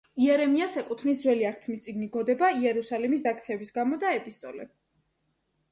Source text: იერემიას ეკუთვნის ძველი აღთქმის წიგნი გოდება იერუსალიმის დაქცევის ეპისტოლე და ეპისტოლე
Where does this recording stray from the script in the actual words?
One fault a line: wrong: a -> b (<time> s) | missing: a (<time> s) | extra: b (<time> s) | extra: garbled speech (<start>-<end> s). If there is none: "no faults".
wrong: ეპისტოლე -> გამო (3.8 s)